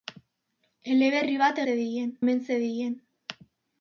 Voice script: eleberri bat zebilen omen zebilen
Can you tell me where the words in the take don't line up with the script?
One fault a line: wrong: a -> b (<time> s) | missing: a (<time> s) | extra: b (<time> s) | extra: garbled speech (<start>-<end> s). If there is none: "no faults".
no faults